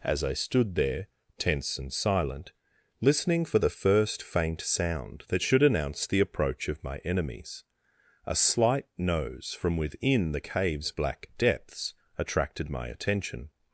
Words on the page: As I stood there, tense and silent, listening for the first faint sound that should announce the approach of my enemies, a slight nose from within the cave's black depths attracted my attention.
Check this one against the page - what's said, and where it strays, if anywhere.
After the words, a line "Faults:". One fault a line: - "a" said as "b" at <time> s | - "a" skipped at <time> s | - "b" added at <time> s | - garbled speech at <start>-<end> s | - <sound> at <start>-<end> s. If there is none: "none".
As I stood there, tense and silent, listening for the first faint sound that should announce the approach of my enemies, a slight nose from within the cave's black depths attracted my attention.
Faults:
none